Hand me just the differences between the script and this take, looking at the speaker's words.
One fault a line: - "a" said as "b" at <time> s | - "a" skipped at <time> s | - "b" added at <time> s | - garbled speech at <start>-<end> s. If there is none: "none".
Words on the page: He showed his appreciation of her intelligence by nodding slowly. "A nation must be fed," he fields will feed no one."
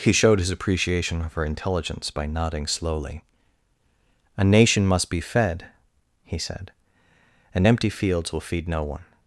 - "said and empty" added at 6.4 s